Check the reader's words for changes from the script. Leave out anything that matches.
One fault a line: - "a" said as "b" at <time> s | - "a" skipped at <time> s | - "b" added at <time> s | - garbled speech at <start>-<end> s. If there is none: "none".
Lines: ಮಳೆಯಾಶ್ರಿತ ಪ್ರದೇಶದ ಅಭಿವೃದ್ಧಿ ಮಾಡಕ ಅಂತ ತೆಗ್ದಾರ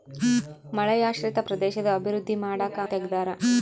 - "ಅಂತ" skipped at 2.8 s